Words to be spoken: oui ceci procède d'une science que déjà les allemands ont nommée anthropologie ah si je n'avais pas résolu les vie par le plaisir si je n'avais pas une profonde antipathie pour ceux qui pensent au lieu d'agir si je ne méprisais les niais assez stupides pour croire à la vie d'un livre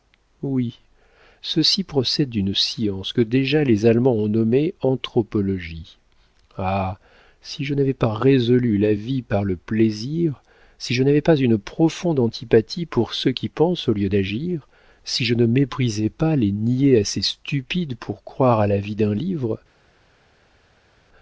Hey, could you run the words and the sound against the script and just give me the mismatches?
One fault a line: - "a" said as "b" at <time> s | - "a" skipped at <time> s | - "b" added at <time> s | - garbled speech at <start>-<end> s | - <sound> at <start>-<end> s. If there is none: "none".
- "les" said as "la" at 8.8 s
- "pas" added at 16.1 s